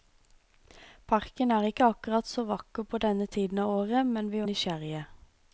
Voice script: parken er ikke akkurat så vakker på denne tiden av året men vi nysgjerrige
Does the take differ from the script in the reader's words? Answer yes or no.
no